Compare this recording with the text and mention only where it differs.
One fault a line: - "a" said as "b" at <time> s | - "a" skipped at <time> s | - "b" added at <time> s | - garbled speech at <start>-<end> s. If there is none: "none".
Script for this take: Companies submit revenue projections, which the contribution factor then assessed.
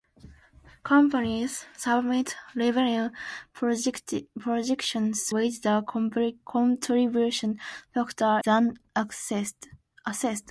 none